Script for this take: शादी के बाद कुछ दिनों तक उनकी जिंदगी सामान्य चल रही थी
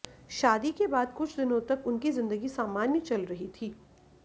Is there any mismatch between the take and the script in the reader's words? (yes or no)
no